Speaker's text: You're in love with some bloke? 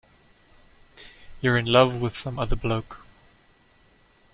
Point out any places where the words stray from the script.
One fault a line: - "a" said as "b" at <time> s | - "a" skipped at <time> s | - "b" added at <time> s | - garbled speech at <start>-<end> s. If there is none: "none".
- "other" added at 2.4 s